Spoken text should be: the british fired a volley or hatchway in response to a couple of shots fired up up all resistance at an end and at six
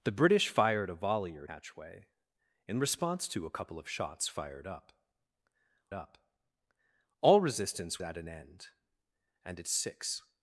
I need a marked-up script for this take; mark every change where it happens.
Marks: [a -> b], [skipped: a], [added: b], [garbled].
the british fired a volley or hatchway in response to a couple of shots fired up up all resistance at an end and at six